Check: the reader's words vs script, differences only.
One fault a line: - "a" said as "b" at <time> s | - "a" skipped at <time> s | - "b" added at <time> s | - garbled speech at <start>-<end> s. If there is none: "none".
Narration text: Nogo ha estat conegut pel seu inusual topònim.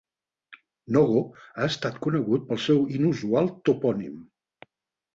none